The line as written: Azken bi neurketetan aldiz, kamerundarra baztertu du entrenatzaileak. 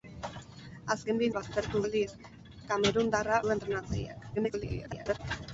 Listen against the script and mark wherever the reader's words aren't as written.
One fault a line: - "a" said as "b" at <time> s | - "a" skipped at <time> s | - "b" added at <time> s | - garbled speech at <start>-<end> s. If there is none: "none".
- "neurketetan" said as "baztertu" at 1.4 s
- "baztertu" skipped at 3.4 s
- garbled speech at 4.3-5.2 s